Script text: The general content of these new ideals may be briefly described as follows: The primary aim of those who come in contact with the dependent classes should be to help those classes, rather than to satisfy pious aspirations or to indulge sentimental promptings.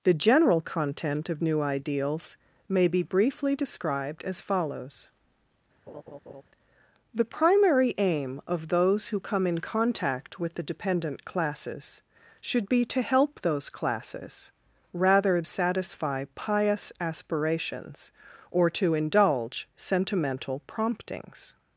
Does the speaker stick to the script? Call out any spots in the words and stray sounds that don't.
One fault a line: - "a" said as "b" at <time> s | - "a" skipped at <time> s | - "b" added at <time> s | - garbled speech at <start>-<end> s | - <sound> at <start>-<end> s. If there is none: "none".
- "these" skipped at 1.4 s
- laugh at 5.9-6.4 s
- "than to" skipped at 15.4 s